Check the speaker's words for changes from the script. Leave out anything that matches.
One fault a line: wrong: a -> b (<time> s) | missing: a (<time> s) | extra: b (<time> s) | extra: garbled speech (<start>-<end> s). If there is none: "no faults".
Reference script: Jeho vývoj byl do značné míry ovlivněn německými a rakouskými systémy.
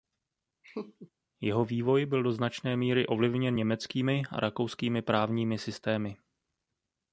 extra: právními (5.0 s)